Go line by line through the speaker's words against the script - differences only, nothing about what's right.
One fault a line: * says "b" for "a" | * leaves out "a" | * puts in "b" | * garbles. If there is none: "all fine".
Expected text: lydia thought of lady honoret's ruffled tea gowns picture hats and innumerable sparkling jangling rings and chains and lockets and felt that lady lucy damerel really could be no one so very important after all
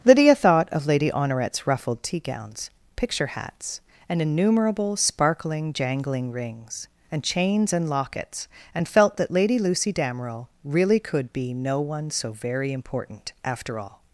all fine